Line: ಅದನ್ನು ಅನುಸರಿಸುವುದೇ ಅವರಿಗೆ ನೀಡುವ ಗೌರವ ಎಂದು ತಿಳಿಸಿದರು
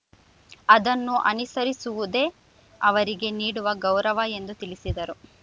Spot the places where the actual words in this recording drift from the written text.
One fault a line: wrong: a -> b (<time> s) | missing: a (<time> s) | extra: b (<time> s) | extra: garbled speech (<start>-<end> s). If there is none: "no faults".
no faults